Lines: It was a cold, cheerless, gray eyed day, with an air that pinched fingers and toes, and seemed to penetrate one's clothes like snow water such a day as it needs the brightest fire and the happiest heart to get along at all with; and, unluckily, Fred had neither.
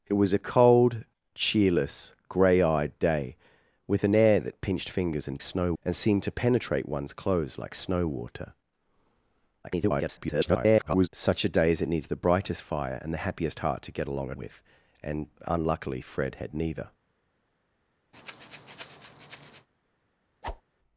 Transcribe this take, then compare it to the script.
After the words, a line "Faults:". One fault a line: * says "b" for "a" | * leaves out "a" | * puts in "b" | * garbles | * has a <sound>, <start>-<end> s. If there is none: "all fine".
It was a cold, cheerless, gray eyed day, with an air that pinched fingers and snow, and seemed to penetrate one's clothes like snow water [garbled] such a day as it needs the brightest fire and the happiest heart to get along at with; and, unluckily, Fred had neither.
Faults:
* says "snow" for "toes"
* garbles
* leaves out "all"
* has a breath, 18.1-19.7 s
* has a whoosh, 20.4-20.6 s